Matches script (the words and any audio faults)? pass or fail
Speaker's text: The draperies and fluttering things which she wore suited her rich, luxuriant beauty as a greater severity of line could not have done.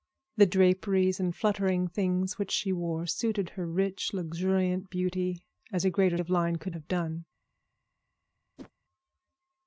fail